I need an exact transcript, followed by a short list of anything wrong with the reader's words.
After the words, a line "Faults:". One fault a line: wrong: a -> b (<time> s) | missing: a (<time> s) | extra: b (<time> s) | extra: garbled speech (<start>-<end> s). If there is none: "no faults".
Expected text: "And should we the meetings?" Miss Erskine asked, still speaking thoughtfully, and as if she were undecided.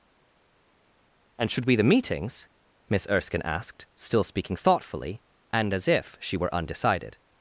"And should we the meetings?" Miss Erskine asked, still speaking thoughtfully, and as if she were undecided.
Faults:
no faults